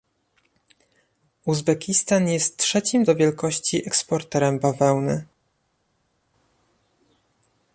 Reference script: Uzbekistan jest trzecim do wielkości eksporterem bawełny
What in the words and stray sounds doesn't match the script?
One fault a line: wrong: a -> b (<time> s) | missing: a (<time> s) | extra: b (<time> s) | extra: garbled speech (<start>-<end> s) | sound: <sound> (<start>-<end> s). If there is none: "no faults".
no faults